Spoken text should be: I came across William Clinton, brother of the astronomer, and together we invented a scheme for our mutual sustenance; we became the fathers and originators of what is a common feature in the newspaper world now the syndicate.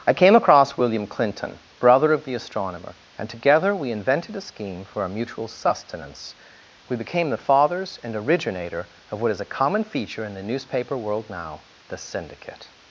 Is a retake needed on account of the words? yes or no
yes